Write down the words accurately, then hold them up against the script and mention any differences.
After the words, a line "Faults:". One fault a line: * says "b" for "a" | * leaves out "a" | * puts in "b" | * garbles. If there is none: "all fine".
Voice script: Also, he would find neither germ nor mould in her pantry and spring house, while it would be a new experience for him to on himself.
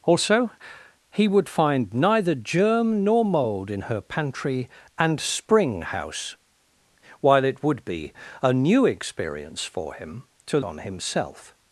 Also, he would find neither germ nor mould in her pantry and spring house, while it would be a new experience for him to on himself.
Faults:
all fine